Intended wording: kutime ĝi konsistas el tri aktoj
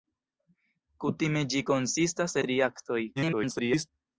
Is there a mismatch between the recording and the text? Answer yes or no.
yes